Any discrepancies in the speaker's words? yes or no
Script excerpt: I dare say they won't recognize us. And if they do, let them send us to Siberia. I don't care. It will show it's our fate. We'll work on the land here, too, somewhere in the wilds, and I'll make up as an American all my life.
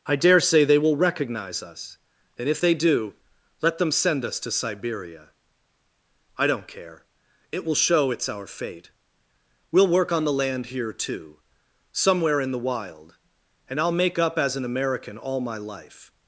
yes